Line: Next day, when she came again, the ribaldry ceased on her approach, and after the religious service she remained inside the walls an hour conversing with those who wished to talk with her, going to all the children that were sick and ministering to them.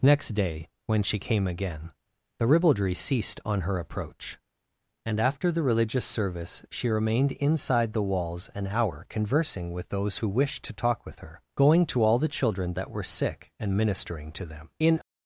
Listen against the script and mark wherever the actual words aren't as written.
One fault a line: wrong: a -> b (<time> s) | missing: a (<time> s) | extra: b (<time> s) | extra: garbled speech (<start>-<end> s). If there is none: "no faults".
extra: In (14.8 s)